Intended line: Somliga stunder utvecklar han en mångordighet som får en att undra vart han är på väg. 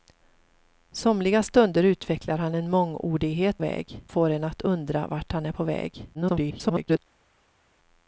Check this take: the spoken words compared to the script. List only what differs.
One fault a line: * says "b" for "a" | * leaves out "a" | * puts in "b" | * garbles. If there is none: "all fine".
* says "väg" for "som"
* garbles